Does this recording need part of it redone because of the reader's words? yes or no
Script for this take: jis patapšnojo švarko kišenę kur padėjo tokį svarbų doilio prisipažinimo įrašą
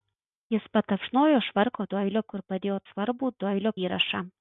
yes